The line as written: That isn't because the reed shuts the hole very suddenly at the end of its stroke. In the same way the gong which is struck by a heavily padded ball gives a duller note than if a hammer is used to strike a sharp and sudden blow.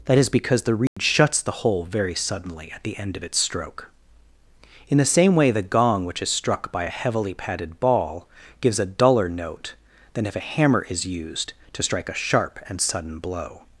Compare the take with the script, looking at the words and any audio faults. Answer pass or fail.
fail